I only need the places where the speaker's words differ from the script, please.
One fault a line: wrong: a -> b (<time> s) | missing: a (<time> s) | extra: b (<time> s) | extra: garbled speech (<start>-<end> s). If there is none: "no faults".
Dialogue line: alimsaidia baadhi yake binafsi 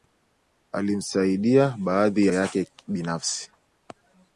no faults